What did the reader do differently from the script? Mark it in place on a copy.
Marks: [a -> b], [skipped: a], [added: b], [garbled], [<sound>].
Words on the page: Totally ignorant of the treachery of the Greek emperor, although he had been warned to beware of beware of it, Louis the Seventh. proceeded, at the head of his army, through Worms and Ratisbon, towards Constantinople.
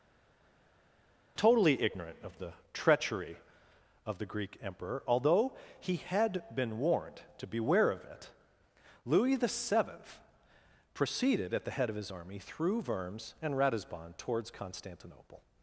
Totally ignorant of the treachery of the Greek emperor, although he had been warned to beware of [skipped: beware of] it, Louis the Seventh. proceeded, at the head of his army, through Worms and Ratisbon, towards Constantinople.